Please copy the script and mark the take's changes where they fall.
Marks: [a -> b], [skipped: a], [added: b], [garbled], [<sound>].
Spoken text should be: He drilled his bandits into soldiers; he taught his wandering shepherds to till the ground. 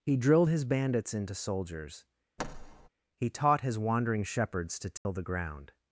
He drilled his bandits into soldiers; [thud] he taught his wandering shepherds to till [dropout] the ground.